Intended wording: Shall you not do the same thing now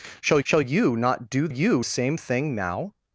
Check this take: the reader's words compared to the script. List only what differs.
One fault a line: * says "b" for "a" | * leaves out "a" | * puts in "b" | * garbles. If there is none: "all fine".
* puts in "shall"
* says "you" for "the"